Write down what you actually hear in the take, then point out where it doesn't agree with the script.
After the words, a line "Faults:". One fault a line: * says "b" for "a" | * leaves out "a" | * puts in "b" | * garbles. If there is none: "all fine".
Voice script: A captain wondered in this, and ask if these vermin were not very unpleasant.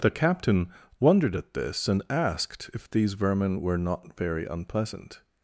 The captain wondered at this, and asked if these vermin were not very unpleasant.
Faults:
* says "The" for "A"
* says "at" for "in"
* says "asked" for "ask"